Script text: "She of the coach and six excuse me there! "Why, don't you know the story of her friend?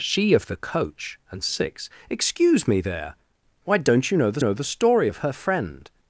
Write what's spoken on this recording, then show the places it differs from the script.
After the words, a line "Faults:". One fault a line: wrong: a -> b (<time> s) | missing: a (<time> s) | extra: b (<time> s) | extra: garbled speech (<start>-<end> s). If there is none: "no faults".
"She of the coach and six excuse me there! "Why, don't you know the know the story of her friend?
Faults:
extra: know the (4.4 s)